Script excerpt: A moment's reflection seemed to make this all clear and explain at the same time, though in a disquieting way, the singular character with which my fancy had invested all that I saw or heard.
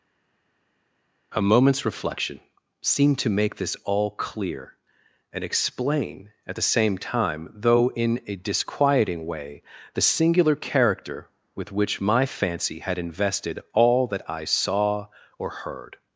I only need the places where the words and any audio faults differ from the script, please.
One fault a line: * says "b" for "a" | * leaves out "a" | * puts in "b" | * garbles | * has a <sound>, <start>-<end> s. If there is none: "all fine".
all fine